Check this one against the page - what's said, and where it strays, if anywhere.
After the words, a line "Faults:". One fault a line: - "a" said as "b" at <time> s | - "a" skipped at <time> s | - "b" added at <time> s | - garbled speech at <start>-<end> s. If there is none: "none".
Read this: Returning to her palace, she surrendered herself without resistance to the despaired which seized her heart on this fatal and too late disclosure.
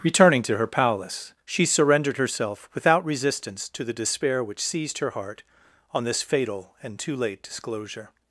Returning to her palace, she surrendered herself without resistance to the despair which seized her heart on this fatal and too late disclosure.
Faults:
- "despaired" said as "despair" at 3.9 s